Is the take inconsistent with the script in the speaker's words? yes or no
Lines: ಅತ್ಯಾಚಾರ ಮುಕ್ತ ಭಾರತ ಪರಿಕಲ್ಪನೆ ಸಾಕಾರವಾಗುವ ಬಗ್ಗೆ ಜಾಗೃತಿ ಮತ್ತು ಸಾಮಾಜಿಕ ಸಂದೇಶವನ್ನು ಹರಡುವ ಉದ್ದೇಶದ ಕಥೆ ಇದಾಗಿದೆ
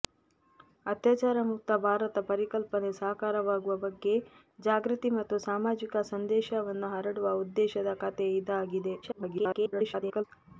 yes